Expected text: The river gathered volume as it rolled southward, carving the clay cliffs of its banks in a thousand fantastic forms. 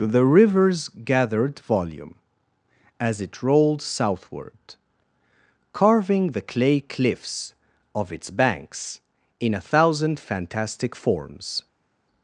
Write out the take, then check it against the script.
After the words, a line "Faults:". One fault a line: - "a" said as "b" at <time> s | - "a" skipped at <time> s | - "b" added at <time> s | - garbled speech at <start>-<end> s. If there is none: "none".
The rivers gathered volume as it rolled southward, carving the clay cliffs of its banks in a thousand fantastic forms.
Faults:
- "river" said as "rivers" at 0.2 s